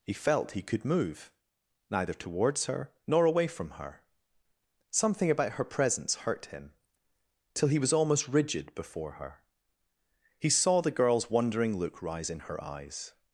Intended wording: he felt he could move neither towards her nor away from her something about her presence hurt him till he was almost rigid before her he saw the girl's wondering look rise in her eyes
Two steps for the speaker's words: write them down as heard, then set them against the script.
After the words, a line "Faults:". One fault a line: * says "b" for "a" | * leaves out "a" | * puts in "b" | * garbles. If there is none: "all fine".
he felt he could move neither towards her nor away from her something about her presence hurt him till he was almost rigid before her he saw the girl's wondering look rise in her eyes
Faults:
all fine